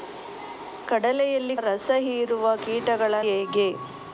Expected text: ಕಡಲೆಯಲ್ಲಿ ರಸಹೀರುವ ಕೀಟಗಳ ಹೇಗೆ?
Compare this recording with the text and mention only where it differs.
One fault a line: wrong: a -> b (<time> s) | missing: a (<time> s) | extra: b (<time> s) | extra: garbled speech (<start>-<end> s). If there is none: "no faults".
no faults